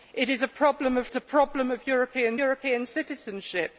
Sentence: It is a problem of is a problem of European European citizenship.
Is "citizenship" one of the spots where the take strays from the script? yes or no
no